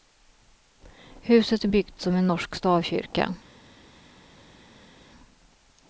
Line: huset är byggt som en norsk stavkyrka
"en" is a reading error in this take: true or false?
false